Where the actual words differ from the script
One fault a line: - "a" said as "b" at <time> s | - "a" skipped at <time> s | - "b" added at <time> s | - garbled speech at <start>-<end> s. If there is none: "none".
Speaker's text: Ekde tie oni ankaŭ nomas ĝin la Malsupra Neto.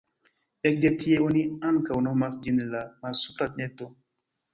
none